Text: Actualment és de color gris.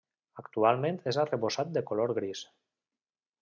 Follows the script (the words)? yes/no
no